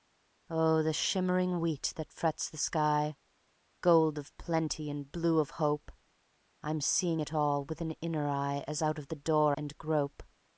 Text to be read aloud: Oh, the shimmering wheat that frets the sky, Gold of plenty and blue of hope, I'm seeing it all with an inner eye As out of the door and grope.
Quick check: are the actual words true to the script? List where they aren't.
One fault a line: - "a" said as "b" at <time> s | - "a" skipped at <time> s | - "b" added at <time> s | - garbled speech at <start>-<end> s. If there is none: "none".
none